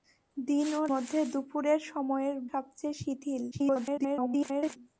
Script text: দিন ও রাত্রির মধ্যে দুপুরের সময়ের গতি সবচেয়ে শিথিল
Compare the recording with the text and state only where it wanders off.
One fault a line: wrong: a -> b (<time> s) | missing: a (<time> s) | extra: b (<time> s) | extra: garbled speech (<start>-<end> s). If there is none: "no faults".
missing: রাত্রির (0.8 s)
missing: গতি (2.4 s)
extra: garbled speech (3.5-4.8 s)